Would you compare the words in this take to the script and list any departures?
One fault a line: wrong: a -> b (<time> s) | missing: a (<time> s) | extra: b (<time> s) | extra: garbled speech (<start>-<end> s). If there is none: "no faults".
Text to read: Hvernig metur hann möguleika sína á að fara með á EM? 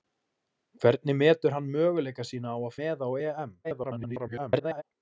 missing: fara (2.8 s)
extra: garbled speech (3.6-4.8 s)